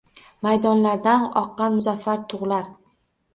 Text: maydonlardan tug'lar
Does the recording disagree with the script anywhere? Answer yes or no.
yes